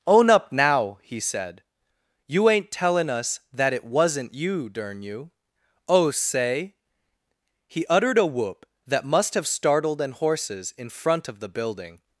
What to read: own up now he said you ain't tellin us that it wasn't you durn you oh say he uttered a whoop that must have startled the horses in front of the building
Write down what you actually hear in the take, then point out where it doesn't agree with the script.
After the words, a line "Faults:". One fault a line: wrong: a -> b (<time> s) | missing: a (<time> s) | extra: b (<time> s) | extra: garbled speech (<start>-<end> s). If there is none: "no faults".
own up now he said you ain't tellin us that it wasn't you durn you oh say he uttered a whoop that must have startled an horses in front of the building
Faults:
wrong: the -> an (10.0 s)